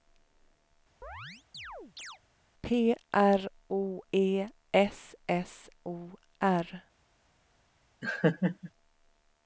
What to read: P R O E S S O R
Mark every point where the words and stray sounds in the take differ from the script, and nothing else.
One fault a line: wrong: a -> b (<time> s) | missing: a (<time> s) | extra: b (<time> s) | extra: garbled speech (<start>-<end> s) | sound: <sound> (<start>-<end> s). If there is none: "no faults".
sound: chirp (1.0-2.2 s)
sound: laugh (8.0-8.7 s)